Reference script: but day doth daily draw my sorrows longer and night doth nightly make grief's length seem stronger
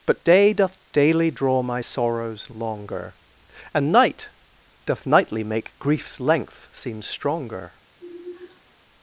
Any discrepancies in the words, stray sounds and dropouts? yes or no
yes